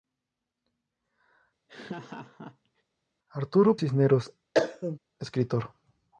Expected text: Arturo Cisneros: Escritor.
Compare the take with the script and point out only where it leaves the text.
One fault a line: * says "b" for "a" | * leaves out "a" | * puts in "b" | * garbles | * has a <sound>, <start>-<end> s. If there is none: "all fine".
* has a laugh, 1.7-2.8 s
* has a cough, 4.5-5.0 s